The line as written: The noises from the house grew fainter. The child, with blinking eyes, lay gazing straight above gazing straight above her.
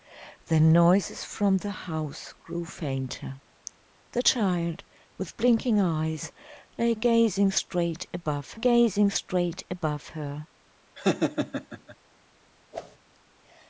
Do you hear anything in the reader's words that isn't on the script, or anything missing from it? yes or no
no